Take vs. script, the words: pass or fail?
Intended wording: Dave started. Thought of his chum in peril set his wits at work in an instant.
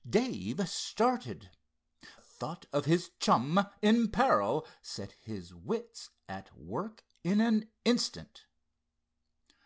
pass